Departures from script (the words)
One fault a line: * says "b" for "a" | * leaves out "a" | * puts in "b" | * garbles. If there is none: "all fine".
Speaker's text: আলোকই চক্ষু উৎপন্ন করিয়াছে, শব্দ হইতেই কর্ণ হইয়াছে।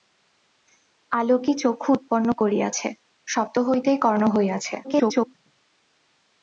* garbles